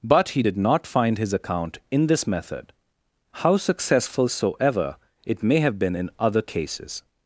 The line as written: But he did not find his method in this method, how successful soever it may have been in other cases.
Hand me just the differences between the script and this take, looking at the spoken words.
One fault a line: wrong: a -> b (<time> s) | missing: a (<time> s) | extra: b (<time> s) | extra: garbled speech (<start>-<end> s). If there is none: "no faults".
wrong: method -> account (1.3 s)